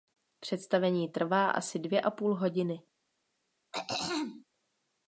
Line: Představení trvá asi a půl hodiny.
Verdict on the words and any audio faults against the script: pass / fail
fail